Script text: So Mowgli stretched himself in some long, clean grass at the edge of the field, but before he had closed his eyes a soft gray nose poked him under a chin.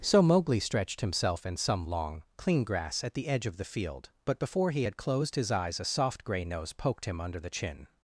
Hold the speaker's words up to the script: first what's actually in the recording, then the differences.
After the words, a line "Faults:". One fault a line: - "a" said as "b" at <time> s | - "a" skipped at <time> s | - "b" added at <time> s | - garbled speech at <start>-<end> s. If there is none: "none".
So Mowgli stretched himself in some long, clean grass at the edge of the field, but before he had closed his eyes a soft gray nose poked him under the chin.
Faults:
- "a" said as "the" at 7.4 s